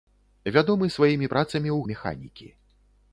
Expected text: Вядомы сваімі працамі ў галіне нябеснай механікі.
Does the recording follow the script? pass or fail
fail